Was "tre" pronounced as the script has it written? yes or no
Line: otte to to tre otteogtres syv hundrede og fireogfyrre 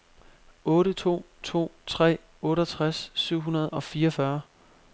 yes